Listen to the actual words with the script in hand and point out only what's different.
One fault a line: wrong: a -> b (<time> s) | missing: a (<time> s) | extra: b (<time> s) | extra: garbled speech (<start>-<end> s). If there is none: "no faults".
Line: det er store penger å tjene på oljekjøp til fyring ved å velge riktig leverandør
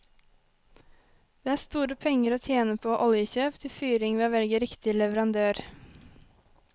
no faults